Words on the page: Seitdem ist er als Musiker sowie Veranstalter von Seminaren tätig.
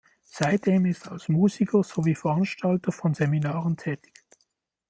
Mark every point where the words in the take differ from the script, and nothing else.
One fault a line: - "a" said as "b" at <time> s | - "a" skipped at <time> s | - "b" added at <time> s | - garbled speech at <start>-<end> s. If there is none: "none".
none